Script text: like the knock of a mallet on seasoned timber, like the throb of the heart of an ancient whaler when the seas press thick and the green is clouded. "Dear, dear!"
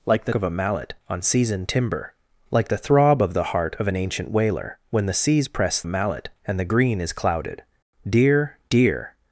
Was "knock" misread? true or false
true